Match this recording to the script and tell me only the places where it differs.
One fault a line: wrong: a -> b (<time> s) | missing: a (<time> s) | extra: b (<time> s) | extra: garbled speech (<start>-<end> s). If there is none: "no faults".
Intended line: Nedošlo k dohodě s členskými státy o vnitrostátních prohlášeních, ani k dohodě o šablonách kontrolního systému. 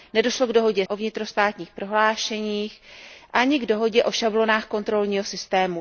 missing: s členskými státy (0.9 s)